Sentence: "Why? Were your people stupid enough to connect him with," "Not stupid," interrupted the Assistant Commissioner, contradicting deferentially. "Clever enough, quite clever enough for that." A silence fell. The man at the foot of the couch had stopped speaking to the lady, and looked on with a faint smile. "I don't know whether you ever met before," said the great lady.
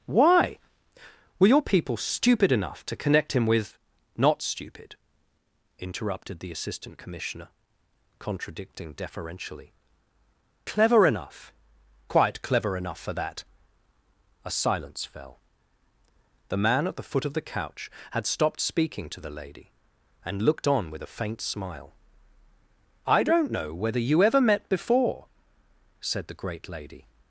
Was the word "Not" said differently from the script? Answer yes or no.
no